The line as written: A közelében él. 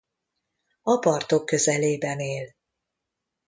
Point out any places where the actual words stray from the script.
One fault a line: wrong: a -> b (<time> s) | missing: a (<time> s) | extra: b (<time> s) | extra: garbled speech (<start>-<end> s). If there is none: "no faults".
extra: partok (1.0 s)